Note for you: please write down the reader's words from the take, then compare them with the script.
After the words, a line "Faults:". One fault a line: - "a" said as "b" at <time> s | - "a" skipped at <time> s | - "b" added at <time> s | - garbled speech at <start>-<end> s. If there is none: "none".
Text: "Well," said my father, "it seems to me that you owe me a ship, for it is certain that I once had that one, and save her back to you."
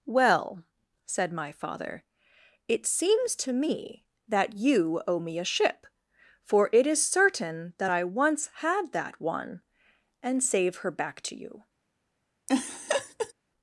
"Well," said my father, "it seems to me that you owe me a ship, for it is certain that I once had that one, and save her back to you."
Faults:
none